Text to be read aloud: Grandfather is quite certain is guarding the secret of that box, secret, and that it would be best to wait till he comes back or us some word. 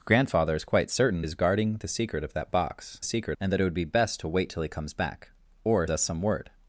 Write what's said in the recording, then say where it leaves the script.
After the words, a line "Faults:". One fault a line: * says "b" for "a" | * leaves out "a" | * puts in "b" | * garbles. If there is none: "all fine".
Grandfather is quite certain is guarding the secret of that box, secret, and that it would be best to wait till he comes back or us some word.
Faults:
all fine